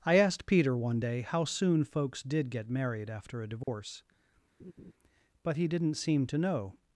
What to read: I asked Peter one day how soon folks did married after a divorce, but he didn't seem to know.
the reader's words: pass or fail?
fail